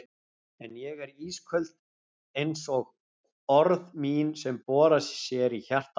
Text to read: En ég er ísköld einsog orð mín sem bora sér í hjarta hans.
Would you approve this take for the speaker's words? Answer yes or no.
yes